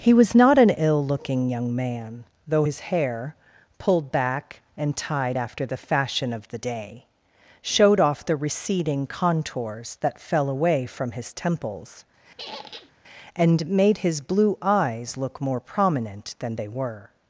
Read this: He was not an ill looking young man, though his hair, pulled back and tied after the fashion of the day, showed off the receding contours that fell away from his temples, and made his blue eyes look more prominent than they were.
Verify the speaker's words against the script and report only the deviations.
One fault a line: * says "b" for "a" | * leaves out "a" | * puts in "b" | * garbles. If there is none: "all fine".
all fine